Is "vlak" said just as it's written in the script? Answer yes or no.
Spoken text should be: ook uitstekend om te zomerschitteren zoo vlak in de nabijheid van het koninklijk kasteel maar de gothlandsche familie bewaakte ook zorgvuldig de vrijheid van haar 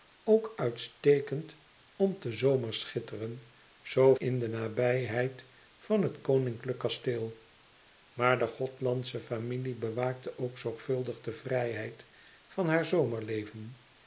no